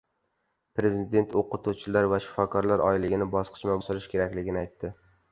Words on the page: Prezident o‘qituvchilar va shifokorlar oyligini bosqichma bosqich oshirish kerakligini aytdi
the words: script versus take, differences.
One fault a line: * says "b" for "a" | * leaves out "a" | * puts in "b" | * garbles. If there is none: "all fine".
* leaves out "bosqich"